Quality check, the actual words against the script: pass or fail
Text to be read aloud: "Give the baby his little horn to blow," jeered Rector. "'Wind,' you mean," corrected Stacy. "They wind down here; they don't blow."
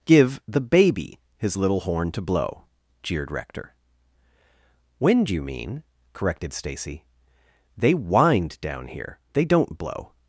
pass